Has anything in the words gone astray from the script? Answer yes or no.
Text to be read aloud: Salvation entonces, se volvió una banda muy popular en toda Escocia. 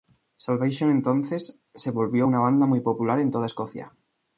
no